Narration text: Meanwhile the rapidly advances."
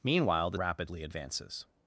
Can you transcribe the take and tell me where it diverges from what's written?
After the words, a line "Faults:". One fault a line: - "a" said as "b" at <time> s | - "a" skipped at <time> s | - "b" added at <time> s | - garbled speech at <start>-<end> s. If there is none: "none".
Meanwhile the rapidly advances."
Faults:
none